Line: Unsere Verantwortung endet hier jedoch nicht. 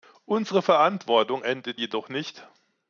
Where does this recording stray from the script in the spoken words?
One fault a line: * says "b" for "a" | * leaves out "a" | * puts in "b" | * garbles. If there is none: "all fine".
* leaves out "hier"